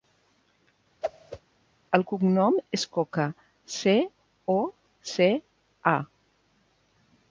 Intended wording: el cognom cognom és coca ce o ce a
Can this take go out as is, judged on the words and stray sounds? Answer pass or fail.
fail